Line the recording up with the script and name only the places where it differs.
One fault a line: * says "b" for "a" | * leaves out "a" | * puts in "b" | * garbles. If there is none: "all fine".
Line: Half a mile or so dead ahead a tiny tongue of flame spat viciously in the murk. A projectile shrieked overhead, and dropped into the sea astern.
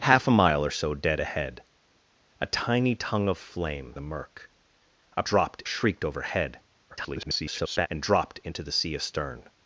* leaves out "spat viciously in"
* says "dropped" for "projectile"
* garbles